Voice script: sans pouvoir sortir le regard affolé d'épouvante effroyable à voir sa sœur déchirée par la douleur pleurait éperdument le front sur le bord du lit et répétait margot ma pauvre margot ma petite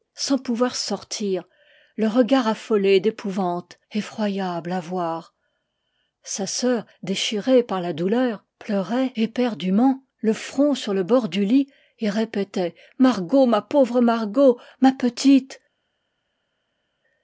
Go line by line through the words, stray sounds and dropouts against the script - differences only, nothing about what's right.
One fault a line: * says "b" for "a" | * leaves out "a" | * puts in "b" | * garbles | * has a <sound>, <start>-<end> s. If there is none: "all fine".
all fine